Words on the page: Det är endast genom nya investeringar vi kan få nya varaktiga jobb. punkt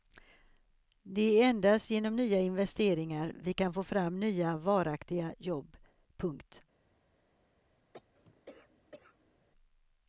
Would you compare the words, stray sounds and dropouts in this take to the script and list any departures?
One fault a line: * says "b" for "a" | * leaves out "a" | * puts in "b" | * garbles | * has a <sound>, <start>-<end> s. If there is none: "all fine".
* puts in "fram"
* has a cough, 7.9-9.4 s